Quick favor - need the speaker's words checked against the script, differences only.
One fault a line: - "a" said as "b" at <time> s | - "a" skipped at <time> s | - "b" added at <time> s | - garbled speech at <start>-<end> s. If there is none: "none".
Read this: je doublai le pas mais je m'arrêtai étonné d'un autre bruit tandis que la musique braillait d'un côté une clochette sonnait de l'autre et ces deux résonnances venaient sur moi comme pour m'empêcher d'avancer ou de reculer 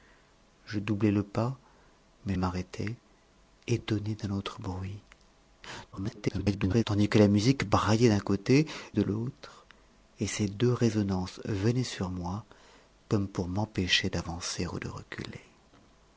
- "je" skipped at 2.4 s
- garbled speech at 5.9-6.8 s
- "une clochette sonnait" skipped at 8.7 s